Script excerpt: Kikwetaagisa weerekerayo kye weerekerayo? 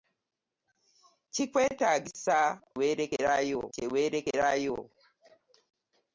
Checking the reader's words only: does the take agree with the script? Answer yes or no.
yes